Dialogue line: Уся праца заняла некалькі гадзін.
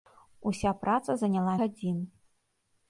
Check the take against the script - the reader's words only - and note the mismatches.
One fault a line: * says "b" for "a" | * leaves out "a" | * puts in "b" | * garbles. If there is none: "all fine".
* leaves out "некалькі"